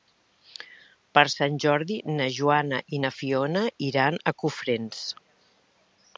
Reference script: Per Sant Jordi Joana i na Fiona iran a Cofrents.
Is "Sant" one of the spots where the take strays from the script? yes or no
no